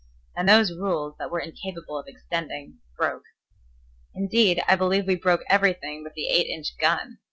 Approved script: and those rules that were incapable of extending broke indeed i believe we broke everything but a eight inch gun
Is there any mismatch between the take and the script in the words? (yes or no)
yes